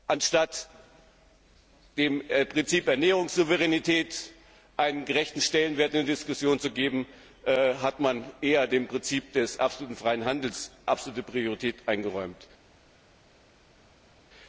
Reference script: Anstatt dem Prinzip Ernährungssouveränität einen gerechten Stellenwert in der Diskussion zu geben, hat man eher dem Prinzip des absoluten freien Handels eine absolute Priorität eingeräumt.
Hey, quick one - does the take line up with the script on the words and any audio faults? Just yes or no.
no